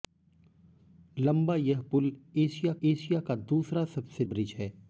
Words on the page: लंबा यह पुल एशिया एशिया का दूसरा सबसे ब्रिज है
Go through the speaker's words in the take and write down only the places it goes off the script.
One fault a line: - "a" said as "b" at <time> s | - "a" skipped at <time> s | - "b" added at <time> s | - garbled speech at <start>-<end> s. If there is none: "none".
none